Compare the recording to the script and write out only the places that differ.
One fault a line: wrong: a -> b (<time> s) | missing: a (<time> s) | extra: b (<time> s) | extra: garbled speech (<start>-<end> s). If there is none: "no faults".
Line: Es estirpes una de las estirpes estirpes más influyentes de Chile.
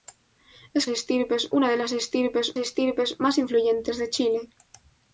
no faults